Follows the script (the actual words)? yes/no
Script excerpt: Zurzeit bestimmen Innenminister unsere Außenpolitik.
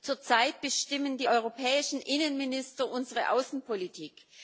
no